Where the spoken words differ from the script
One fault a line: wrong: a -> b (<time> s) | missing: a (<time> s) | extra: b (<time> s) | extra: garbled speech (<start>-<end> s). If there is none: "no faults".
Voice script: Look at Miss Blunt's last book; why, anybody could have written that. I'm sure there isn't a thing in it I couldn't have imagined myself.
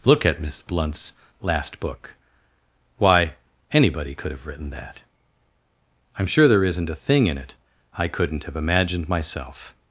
no faults